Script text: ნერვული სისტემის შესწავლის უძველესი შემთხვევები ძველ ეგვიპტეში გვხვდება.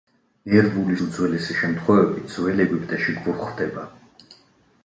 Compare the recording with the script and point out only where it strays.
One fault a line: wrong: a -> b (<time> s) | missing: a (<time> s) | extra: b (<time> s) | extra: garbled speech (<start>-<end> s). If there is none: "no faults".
missing: სისტემის შესწავლის (0.9 s)